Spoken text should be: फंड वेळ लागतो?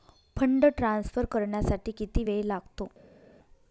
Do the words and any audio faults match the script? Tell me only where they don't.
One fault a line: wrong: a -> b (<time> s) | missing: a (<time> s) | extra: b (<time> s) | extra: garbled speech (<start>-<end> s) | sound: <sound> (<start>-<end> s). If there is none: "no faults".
extra: ट्रान्सफर करण्यासाठी किती (0.8 s)